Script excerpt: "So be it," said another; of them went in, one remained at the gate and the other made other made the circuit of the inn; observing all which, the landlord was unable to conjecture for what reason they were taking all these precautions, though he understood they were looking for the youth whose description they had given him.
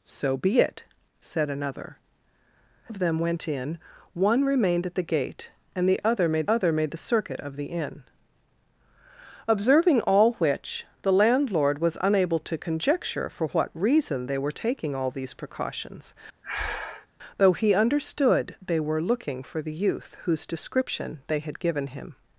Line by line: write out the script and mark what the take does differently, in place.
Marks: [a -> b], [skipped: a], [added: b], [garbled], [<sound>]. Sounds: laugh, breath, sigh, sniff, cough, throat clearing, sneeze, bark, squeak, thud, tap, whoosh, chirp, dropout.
"So be it," said another; of them went in, one remained at the gate and the other made other made the circuit of the inn; observing all which, the landlord was unable to conjecture for what reason they were taking all these precautions, [breath] though he understood they were looking for the youth whose description they had given him.